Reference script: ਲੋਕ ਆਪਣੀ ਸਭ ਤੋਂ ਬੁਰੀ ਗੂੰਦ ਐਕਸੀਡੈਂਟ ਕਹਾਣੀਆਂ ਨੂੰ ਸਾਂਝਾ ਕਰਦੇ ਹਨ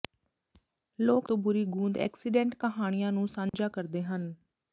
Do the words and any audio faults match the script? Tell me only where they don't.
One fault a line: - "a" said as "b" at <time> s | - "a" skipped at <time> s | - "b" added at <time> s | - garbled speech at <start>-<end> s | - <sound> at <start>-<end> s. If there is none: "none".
- "ਆਪਣੀ ਸਭ" skipped at 1.3 s
- dropout at 3.5-3.5 s